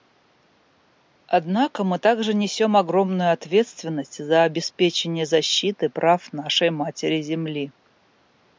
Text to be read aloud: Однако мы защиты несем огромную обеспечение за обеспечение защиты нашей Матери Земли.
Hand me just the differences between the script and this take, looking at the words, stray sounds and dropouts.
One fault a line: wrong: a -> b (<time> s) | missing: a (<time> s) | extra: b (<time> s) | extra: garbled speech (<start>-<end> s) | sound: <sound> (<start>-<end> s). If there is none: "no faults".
wrong: защиты -> также (2.0 s)
wrong: обеспечение -> ответственность (3.3 s)
extra: прав (5.9 s)